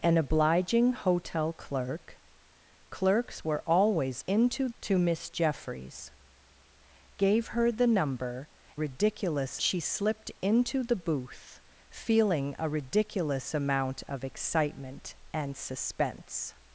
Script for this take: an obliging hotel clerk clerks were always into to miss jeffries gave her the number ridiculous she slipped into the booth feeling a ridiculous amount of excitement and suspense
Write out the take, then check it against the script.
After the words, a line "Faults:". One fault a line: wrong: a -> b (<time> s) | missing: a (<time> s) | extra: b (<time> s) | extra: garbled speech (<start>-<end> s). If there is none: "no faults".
an obliging hotel clerk clerks were always into to miss jeffries gave her the number ridiculous she slipped into the booth feeling a ridiculous amount of excitement and suspense
Faults:
no faults